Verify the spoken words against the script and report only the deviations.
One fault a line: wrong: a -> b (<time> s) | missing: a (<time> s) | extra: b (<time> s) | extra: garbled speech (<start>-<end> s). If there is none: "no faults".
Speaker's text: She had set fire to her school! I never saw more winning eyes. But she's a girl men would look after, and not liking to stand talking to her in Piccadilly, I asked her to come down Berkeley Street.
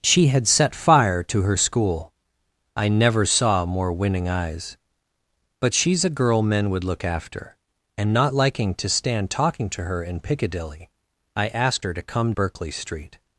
missing: down (12.3 s)